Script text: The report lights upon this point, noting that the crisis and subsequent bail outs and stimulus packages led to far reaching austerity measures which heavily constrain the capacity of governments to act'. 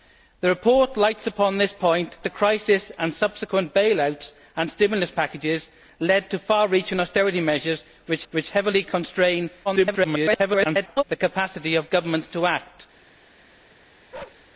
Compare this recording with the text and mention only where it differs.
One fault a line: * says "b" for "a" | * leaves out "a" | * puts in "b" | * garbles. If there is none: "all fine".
* leaves out "noting that"
* puts in "which"
* garbles